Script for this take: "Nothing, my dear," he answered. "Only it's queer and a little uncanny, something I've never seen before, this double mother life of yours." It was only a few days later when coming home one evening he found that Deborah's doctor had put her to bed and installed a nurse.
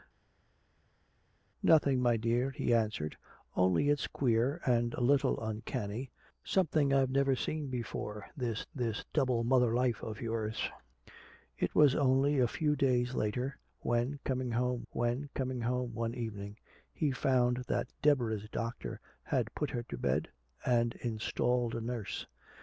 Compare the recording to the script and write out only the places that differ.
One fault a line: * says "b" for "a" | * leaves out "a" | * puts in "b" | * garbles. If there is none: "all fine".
* puts in "this"
* puts in "when coming home"